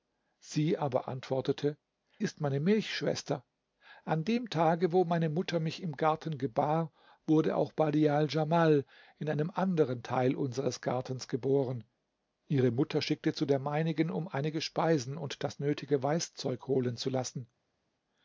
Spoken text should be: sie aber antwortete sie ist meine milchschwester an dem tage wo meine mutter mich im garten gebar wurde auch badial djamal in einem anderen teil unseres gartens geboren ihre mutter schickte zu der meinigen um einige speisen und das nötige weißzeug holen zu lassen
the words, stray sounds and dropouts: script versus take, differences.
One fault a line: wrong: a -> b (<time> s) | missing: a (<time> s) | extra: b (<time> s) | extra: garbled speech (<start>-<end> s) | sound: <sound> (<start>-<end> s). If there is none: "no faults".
missing: sie (1.8 s)